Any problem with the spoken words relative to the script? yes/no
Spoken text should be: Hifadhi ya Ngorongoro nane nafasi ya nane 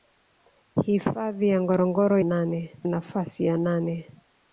no